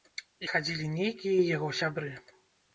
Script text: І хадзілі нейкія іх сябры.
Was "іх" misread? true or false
true